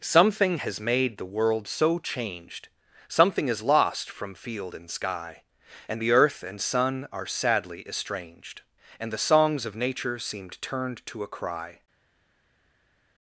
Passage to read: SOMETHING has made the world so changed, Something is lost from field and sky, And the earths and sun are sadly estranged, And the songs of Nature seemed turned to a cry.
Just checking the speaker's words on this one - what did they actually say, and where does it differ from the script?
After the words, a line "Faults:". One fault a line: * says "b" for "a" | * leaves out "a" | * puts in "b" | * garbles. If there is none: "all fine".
SOMETHING has made the world so changed, Something is lost from field and sky, And the earth and sun are sadly estranged, And the songs of Nature seemed turned to a cry.
Faults:
* says "earth" for "earths"